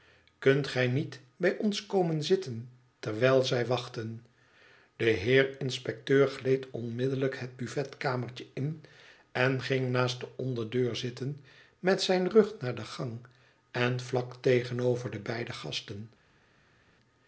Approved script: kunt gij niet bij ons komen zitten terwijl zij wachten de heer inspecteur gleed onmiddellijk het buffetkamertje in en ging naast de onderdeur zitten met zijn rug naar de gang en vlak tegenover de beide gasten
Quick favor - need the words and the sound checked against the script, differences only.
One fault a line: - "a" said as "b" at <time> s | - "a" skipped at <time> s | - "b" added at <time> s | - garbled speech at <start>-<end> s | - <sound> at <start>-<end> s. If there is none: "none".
none